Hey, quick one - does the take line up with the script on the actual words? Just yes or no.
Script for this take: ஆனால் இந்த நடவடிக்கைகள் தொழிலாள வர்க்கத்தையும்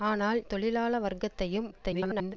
no